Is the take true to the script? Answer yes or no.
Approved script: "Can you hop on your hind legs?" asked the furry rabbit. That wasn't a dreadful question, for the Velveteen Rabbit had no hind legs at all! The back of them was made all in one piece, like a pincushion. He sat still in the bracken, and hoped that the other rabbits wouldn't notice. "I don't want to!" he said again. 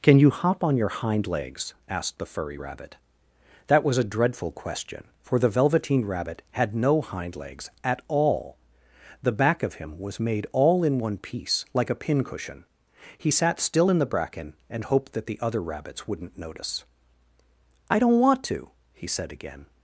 no